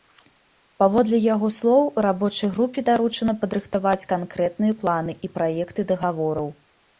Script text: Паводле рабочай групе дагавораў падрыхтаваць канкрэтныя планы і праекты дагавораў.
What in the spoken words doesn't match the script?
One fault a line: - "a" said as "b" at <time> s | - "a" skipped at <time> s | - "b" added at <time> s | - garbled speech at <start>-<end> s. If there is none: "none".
- "яго слоў" added at 1.3 s
- "дагавораў" said as "даручана" at 2.9 s